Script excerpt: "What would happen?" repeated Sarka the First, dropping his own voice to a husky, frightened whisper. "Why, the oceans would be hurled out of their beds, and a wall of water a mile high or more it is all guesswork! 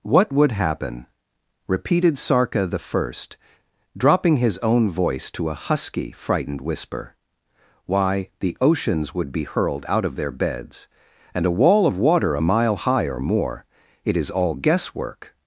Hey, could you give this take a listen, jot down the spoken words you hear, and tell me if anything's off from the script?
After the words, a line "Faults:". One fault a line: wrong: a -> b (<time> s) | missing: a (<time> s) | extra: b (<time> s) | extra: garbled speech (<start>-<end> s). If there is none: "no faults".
"What would happen?" repeated Sarka the First, dropping his own voice to a husky, frightened whisper. "Why, the oceans would be hurled out of their beds, and a wall of water a mile high or more it is all guesswork!
Faults:
no faults